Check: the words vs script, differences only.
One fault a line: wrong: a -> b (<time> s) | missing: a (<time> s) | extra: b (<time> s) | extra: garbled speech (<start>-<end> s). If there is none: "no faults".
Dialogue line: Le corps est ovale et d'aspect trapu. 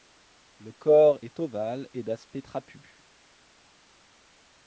no faults